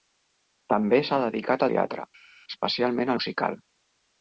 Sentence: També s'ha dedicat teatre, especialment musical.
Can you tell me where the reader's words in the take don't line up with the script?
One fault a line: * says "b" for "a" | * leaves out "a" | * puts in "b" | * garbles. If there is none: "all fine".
all fine